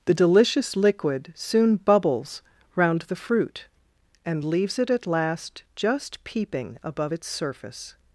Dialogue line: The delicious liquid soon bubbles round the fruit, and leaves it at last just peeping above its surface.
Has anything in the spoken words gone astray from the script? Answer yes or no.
no